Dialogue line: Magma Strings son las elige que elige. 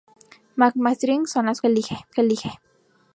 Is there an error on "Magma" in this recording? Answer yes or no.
no